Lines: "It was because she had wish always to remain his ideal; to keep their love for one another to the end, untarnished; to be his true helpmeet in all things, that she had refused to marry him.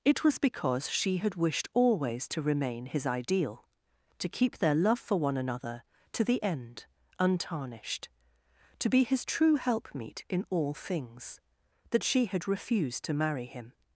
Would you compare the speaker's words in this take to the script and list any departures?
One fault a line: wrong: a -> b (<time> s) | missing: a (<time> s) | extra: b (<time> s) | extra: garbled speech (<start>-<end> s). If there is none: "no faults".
wrong: wish -> wished (1.4 s)